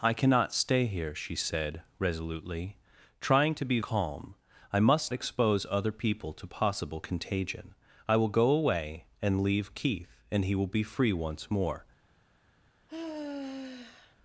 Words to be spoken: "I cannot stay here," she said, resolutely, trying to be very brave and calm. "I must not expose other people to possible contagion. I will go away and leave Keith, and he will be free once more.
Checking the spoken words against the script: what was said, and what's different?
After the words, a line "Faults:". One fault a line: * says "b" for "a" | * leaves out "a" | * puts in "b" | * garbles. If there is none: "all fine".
"I cannot stay here," she said, resolutely, trying to be calm. "I must expose other people to possible contagion. I will go away and leave Keith, and he will be free once more.
Faults:
* leaves out "very brave and"
* leaves out "not"